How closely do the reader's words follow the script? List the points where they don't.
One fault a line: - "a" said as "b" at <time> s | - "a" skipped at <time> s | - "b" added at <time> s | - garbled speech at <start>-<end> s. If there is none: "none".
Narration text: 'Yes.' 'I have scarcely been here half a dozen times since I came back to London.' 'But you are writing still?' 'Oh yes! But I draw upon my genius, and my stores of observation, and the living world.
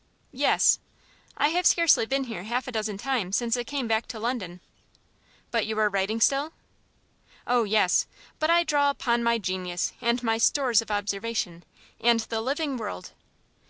none